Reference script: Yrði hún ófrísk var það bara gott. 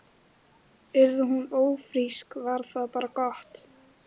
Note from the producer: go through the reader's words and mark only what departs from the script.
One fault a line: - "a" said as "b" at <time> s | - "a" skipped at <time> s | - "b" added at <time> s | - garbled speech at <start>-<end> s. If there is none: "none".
none